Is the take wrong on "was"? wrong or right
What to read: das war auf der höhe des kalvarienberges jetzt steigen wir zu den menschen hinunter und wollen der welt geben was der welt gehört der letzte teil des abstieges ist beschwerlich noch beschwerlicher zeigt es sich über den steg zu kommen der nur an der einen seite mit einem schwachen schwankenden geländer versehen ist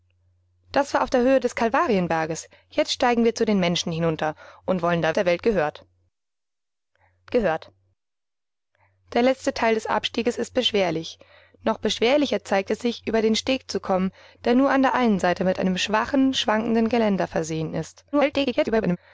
wrong